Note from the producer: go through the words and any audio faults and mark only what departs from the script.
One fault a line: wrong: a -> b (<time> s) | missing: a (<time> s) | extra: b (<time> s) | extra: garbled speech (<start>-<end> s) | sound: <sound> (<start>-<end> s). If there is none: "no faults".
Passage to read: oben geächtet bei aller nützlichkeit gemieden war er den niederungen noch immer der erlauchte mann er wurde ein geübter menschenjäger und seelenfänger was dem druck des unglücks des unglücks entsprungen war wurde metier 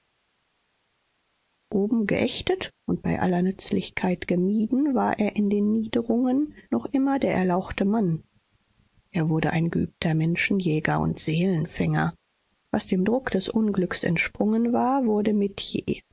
extra: und (2.9 s)
extra: in (5.4 s)
missing: des unglücks (14.0 s)